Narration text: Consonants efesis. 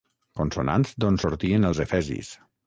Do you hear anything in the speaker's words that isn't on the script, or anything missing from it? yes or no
yes